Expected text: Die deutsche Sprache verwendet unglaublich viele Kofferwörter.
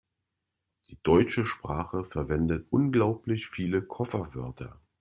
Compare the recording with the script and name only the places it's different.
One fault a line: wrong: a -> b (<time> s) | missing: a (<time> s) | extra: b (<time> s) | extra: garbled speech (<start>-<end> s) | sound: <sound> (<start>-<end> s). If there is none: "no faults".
no faults